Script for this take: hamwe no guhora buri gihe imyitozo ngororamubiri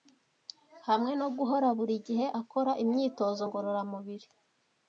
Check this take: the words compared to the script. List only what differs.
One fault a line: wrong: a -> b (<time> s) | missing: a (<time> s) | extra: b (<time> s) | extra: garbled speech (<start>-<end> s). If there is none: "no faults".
extra: akora (2.4 s)